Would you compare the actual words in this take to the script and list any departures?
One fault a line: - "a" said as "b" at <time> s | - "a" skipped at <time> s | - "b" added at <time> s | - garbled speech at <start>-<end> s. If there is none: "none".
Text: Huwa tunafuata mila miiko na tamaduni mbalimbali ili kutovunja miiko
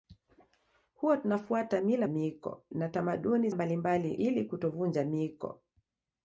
none